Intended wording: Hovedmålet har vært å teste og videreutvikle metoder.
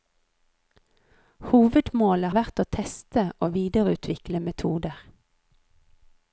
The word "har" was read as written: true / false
false